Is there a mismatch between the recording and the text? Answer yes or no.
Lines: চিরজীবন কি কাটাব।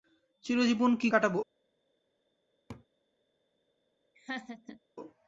no